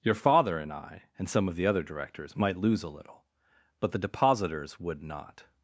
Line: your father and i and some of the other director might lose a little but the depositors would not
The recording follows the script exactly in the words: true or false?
false